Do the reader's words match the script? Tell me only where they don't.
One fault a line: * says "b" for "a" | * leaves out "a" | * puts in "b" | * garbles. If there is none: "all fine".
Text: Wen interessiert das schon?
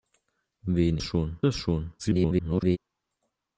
* says "schon" for "interessiert"
* garbles